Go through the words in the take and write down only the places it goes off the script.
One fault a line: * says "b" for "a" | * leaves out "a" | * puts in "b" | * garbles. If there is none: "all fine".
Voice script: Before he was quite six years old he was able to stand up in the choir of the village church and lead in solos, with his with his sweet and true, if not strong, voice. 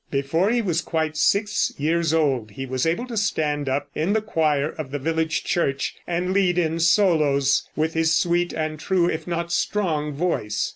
* leaves out "with his"